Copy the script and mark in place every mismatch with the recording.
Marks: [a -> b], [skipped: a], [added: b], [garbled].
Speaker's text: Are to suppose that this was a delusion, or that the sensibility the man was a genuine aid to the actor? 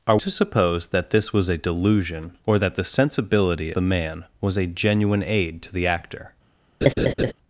Are to suppose that this was a delusion, or that the sensibility the man was a genuine aid to the actor?